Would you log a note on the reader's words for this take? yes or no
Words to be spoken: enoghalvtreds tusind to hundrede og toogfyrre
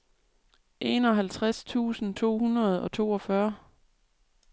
no